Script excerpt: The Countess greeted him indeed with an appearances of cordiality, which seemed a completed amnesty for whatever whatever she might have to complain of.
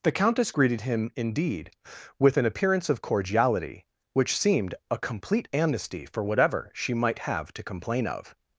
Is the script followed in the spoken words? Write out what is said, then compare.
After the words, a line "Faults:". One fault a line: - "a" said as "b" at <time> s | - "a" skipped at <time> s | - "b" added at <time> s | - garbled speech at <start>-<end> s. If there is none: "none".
The Countess greeted him indeed with an appearance of cordiality, which seemed a complete amnesty for whatever she might have to complain of.
Faults:
- "appearances" said as "appearance" at 2.5 s
- "completed" said as "complete" at 5.0 s
- "whatever" skipped at 6.7 s